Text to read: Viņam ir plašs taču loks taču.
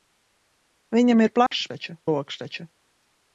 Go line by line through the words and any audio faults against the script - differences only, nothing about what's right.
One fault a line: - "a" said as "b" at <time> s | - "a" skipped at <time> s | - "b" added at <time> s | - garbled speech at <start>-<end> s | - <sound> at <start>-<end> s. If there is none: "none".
- dropout at 1.5-1.5 s